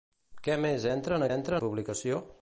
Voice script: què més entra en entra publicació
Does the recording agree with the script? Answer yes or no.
yes